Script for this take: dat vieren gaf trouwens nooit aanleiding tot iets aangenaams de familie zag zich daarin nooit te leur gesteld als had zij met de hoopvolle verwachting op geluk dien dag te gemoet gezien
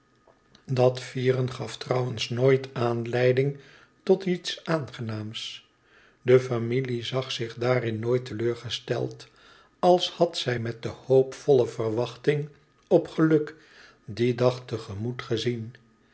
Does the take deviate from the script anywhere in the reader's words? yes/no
no